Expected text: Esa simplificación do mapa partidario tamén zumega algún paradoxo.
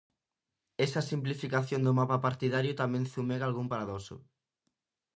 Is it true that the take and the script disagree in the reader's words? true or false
false